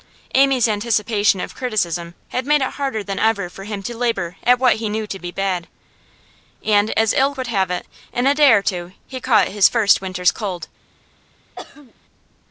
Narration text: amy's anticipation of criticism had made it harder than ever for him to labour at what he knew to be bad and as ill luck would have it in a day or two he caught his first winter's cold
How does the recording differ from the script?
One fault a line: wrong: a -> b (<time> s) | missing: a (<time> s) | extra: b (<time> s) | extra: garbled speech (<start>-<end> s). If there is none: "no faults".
missing: luck (7.3 s)